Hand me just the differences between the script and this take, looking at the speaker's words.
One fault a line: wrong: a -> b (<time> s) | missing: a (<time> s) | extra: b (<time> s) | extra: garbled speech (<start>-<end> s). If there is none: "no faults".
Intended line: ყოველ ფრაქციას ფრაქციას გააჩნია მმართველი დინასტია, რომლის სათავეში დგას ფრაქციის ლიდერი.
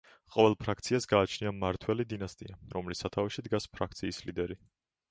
missing: ფრაქციას (1.1 s)